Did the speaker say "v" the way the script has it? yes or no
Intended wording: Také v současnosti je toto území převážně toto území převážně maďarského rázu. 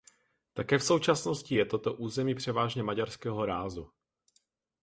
yes